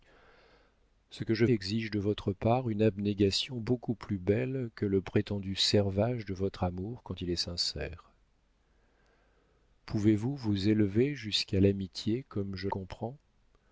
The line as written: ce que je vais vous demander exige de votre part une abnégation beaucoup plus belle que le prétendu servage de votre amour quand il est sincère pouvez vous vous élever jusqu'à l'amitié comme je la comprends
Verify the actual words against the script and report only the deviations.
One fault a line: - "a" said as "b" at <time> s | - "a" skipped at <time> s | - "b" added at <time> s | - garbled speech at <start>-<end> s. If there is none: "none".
- "vais vous demander" skipped at 1.4 s
- "la" skipped at 12.7 s